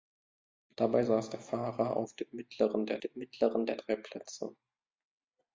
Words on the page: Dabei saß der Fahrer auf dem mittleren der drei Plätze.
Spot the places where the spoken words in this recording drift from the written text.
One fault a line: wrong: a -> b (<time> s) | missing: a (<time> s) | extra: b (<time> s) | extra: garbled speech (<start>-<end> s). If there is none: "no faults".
extra: dem mittleren der (3.0 s)